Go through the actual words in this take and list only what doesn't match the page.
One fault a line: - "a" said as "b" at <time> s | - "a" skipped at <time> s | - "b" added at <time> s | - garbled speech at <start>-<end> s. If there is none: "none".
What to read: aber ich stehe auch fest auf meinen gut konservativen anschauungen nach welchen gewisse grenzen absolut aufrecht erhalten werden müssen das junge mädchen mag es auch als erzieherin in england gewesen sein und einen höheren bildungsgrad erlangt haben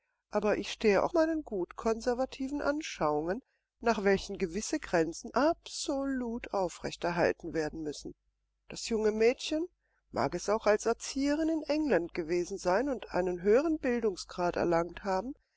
- "fest auf" skipped at 1.1 s